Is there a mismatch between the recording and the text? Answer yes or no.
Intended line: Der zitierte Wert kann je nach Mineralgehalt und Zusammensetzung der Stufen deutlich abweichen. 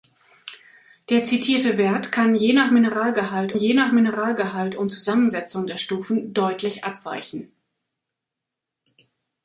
yes